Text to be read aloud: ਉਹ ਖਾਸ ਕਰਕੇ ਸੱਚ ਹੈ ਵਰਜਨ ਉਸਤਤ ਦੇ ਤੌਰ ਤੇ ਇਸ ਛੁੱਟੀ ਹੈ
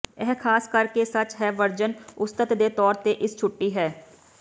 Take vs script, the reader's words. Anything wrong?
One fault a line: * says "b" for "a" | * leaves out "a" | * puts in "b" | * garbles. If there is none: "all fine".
* says "ਇਹ" for "ਉਹ"